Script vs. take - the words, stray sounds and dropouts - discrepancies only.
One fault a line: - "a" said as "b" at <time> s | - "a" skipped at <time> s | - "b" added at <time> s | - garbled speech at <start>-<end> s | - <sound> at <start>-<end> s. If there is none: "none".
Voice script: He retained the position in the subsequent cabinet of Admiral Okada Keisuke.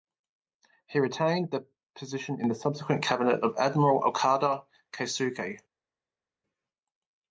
none